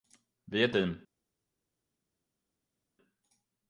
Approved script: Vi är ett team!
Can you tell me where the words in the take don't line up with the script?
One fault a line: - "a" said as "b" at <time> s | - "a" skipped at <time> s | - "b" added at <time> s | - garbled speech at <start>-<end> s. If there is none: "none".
none